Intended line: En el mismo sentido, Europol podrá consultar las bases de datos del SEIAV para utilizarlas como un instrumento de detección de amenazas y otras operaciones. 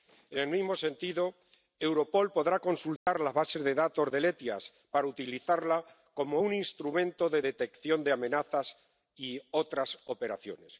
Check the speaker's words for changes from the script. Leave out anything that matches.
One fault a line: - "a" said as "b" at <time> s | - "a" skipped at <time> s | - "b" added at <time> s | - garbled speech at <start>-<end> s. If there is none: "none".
none